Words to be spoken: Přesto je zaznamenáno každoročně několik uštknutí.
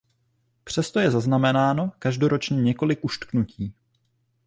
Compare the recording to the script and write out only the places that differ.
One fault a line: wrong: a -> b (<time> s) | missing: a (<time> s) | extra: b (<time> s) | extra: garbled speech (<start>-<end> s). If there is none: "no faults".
no faults